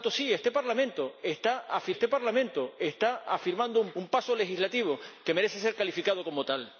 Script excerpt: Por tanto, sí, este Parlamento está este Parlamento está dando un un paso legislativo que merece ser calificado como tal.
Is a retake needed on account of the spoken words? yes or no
no